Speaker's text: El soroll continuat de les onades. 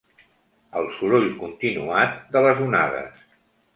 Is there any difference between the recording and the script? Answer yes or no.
no